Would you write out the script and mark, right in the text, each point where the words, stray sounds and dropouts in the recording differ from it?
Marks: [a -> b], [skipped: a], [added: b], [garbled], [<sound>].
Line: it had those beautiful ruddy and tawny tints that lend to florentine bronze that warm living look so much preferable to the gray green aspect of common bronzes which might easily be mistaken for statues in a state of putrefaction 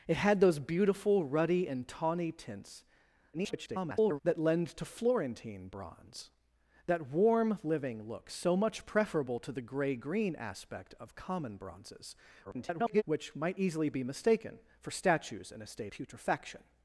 it had those beautiful ruddy and tawny tints [garbled] that lend to florentine bronze that warm living look so much preferable to the gray green aspect of common bronzes [garbled] which might easily be mistaken for statues in a state [skipped: of] putrefaction